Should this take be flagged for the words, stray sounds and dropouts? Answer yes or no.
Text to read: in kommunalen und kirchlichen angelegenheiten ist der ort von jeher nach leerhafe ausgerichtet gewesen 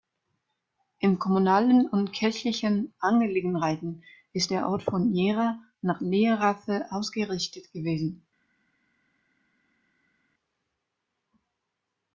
no